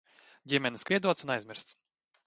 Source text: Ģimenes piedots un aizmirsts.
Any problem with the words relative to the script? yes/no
no